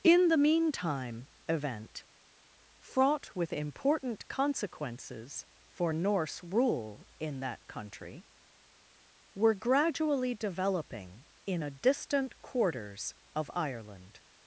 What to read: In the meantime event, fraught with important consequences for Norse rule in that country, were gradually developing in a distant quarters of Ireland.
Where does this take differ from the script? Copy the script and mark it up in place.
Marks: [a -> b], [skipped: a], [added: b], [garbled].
In the meantime event, fraught with important consequences for Norse rule in that country, were gradually developing in a distant quarters of Ireland.